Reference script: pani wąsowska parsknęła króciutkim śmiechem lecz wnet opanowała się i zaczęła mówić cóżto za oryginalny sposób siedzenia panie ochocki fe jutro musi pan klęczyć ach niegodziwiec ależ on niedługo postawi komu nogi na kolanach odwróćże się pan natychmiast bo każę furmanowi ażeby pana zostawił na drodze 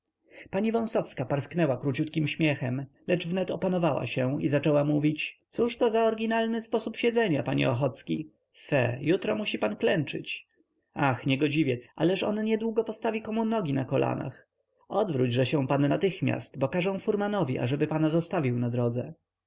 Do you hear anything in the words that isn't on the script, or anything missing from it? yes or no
no